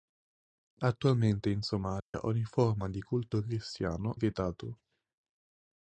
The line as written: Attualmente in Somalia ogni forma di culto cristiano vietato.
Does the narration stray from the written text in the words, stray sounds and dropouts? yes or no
yes